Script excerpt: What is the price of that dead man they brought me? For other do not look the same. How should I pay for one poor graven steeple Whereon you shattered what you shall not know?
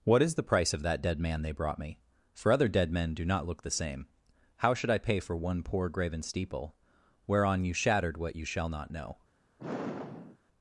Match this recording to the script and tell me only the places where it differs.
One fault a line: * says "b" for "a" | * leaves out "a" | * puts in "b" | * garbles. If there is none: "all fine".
* puts in "dead men"